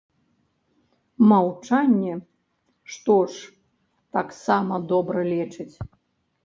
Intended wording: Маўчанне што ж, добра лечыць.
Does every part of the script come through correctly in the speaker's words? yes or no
no